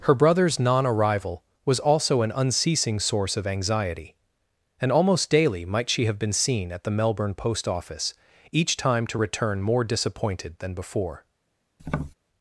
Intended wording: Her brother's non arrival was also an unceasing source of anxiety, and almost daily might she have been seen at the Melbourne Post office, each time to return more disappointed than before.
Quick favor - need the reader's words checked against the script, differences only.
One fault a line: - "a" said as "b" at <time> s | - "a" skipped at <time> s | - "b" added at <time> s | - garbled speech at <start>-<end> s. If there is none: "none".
none